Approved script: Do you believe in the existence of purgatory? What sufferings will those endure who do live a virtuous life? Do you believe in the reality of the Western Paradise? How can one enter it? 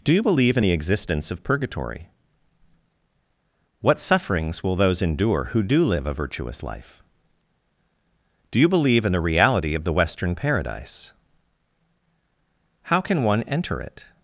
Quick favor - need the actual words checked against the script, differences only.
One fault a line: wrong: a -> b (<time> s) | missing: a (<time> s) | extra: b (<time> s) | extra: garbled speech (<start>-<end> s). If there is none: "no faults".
no faults